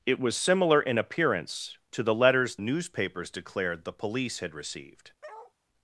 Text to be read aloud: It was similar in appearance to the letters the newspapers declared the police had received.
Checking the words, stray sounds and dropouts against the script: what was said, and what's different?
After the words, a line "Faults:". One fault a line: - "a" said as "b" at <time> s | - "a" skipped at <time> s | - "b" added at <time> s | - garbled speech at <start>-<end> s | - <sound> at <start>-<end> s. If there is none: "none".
It was similar in appearance to the letters newspapers declared the police had received.
Faults:
- "the" skipped at 2.6 s
- bark at 5.2-5.5 s